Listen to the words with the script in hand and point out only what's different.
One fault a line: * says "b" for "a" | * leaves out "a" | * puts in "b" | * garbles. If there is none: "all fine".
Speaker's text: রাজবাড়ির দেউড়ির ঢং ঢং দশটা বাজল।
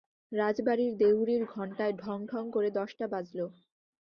* puts in "ঘণ্টায়"
* puts in "করে"